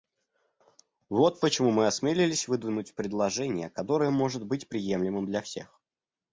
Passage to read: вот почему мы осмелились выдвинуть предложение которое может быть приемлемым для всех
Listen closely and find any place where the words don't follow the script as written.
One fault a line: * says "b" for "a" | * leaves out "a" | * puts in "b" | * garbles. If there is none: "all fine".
all fine